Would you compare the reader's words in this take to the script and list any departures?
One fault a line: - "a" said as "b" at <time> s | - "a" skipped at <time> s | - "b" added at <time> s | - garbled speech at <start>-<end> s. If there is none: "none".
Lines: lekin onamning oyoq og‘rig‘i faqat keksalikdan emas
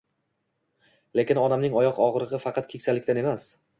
none